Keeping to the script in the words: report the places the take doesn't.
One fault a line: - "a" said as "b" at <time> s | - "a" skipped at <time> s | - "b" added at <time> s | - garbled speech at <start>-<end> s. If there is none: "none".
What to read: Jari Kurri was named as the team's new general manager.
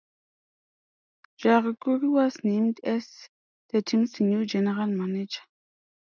none